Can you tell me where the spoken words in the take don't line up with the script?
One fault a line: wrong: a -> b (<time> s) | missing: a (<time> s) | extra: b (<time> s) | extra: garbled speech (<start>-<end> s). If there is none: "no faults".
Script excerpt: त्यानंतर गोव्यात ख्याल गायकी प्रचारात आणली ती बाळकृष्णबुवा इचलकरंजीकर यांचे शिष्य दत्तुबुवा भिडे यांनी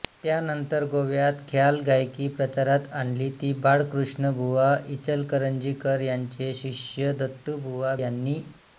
missing: भिडे (8.0 s)